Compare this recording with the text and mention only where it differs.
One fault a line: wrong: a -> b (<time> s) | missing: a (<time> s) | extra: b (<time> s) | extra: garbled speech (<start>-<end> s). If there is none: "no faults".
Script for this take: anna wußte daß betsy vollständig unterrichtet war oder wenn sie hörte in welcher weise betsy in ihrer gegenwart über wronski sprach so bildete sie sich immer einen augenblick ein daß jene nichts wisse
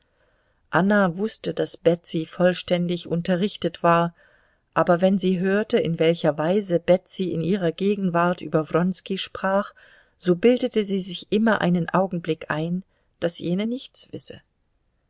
wrong: oder -> aber (4.7 s)